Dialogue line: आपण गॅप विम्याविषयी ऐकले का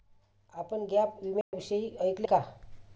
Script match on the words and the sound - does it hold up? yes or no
no